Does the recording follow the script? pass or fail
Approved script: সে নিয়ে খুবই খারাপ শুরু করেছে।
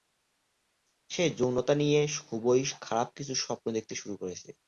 fail